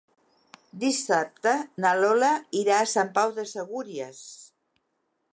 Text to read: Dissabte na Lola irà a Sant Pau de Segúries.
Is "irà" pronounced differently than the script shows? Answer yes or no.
no